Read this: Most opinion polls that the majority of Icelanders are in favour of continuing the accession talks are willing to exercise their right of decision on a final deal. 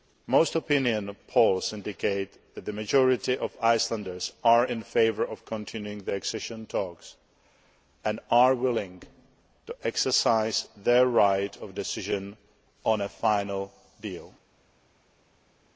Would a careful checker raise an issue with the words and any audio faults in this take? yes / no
yes